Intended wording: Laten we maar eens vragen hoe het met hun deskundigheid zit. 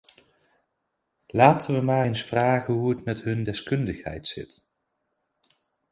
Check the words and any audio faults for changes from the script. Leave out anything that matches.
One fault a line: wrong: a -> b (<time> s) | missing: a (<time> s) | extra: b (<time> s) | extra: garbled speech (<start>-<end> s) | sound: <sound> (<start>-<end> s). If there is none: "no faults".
no faults